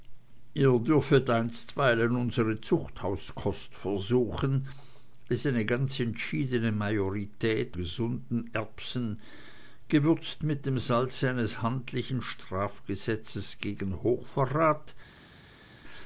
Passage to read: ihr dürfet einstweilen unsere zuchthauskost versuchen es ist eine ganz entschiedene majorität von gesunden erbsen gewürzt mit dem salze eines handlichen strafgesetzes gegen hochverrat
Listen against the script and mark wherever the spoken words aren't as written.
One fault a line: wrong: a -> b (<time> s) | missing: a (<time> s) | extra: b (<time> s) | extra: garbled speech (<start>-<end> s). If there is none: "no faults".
missing: ist (5.5 s)
missing: von (7.8 s)